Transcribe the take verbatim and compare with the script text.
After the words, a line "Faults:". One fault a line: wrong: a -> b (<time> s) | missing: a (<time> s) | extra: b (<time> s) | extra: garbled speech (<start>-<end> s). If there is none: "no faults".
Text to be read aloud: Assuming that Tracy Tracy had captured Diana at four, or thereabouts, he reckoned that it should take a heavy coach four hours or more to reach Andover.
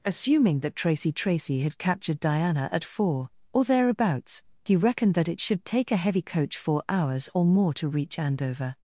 Assuming that Tracy Tracy had captured Diana at four, or thereabouts, he reckoned that it should take a heavy coach four hours or more to reach Andover.
Faults:
no faults